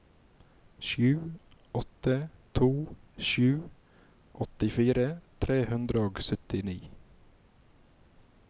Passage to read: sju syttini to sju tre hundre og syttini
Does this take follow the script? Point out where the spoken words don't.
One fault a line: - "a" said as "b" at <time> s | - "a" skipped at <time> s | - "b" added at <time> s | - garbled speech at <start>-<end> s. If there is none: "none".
- "syttini" said as "åtte" at 1.7 s
- "åttifire" added at 4.5 s